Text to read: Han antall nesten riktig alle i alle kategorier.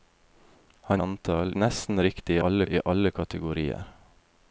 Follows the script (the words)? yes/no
yes